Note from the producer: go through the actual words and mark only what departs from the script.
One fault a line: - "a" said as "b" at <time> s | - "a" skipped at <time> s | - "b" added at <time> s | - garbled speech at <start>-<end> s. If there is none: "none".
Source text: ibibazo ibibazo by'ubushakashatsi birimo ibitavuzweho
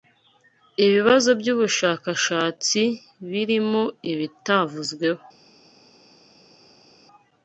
- "ibibazo" skipped at 1.3 s